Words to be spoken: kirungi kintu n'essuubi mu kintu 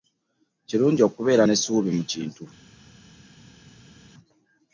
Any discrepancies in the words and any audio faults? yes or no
yes